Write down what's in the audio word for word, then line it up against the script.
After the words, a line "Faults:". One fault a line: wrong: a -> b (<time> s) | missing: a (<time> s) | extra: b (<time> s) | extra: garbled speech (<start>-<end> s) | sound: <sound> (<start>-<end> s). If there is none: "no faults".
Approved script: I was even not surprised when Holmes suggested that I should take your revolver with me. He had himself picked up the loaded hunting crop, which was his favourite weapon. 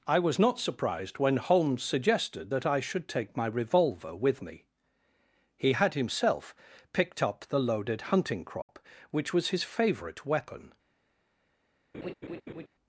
I was not surprised when Holmes suggested that I should take my revolver with me. He had himself picked up the loaded hunting crop, which was his favourite weapon.
Faults:
missing: even (0.4 s)
wrong: your -> my (3.4 s)
sound: dropout (8.6-8.7 s)
sound: laugh (11.9-12.7 s)